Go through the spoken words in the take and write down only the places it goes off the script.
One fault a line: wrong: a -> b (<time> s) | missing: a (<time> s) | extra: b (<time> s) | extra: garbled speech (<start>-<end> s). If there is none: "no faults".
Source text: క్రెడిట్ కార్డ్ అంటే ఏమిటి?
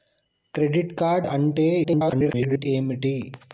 extra: garbled speech (1.8-2.7 s)